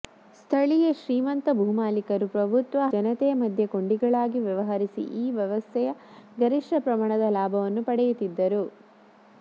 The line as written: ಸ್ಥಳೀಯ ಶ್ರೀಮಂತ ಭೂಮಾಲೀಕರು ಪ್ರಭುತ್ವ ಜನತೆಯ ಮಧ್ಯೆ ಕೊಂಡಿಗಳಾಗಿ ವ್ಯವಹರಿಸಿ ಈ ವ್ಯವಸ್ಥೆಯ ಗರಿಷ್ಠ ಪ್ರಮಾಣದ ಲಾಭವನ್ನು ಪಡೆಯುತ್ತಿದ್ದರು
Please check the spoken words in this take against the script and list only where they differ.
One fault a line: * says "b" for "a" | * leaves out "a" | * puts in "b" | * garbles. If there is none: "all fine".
all fine